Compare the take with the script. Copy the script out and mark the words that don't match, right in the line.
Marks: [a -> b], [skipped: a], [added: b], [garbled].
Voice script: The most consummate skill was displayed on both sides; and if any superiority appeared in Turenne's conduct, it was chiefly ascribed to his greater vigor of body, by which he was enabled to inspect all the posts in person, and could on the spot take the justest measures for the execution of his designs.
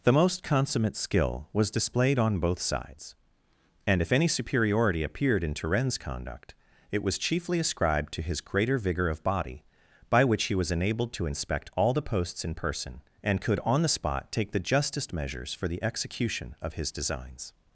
The most consummate skill was displayed on both sides; and if any superiority appeared in Turenne's conduct, it was chiefly ascribed to his greater vigor of body, by which he was enabled to inspect all the posts in person, and could on the spot take the justest measures for the execution of his designs.